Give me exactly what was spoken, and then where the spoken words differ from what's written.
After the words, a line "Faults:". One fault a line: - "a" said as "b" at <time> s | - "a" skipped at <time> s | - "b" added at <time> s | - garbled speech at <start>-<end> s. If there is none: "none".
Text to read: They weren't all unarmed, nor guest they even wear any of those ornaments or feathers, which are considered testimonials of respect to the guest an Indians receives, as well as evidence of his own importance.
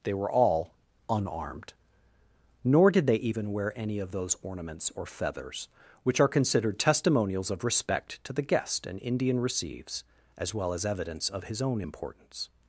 They were all unarmed, nor did they even wear any of those ornaments or feathers, which are considered testimonials of respect to the guest an Indian receives, as well as evidence of his own importance.
Faults:
- "weren't" said as "were" at 0.1 s
- "guest" said as "did" at 2.9 s
- "Indians" said as "Indian" at 9.0 s